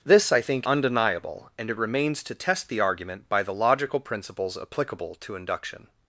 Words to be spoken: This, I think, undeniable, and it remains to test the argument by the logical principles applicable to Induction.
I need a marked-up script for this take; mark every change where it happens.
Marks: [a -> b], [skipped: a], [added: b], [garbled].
This, I think, undeniable, and it remains to test the argument by the logical principles applicable to Induction.